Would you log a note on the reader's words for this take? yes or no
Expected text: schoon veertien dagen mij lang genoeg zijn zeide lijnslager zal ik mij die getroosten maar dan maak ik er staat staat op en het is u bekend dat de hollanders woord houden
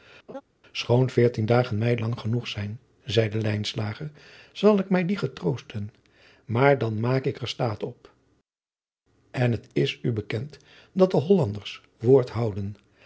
yes